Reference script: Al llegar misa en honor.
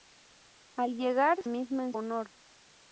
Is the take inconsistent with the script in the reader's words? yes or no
no